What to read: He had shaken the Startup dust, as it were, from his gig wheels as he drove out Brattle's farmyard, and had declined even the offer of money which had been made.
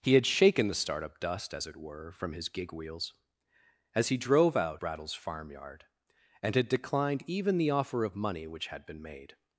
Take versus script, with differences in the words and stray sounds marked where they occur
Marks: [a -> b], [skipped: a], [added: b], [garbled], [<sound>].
He had shaken the Startup dust, as it were, from his gig wheels as he drove out Brattle's farmyard, and had declined even the offer of money which had been made.